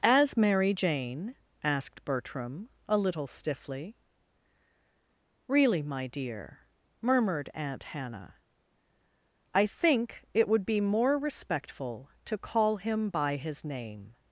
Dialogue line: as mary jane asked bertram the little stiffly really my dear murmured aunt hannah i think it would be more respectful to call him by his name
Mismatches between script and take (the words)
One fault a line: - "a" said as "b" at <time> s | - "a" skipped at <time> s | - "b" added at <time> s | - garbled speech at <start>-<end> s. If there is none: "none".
- "the" said as "a" at 2.9 s